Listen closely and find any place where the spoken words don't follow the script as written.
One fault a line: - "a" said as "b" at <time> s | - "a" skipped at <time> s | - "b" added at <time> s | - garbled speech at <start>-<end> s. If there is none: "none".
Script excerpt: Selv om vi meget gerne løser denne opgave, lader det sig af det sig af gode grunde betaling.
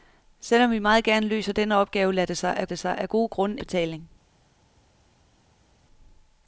none